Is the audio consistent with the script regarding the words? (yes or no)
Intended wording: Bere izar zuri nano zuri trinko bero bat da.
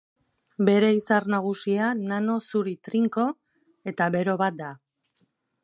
no